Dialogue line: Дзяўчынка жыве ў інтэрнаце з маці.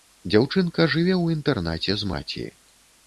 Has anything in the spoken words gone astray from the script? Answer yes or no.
no